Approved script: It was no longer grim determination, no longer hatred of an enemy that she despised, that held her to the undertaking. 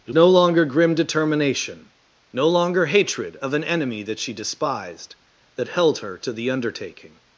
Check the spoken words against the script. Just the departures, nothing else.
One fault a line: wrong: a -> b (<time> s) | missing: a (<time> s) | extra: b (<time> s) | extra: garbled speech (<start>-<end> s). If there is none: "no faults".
missing: was (0.1 s)